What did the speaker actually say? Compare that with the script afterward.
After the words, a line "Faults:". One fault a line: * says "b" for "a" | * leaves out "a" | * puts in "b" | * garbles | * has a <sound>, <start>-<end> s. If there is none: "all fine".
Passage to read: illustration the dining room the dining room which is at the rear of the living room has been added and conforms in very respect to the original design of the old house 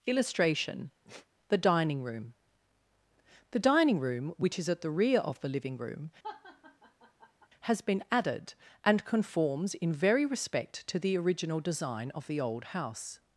illustration the dining room the dining room which is at the rear of the living room has been added and conforms in very respect to the original design of the old house
Faults:
* has a sigh, 1.0-1.3 s
* has a laugh, 6.2-7.5 s